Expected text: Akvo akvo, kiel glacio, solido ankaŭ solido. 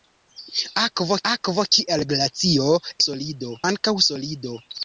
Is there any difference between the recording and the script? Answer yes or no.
no